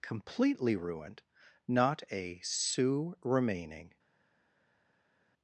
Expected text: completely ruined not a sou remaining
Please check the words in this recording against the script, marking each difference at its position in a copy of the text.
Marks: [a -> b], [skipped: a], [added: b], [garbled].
completely ruined not a sou remaining